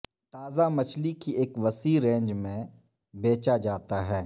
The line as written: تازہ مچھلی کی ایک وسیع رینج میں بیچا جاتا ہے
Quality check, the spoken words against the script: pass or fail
pass